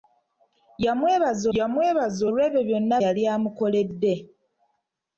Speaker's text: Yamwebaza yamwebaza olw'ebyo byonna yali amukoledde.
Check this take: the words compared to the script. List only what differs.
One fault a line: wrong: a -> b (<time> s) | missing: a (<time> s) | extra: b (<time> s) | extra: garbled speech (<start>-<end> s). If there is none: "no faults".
no faults